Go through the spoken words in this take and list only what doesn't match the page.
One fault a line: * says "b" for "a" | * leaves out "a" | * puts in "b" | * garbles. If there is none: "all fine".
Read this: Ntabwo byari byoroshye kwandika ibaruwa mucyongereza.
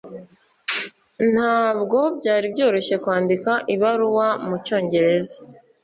all fine